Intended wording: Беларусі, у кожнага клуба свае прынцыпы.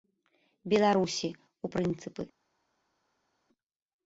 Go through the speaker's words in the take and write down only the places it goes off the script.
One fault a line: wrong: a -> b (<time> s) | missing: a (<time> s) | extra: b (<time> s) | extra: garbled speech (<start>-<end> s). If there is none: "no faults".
missing: кожнага клуба свае (1.7 s)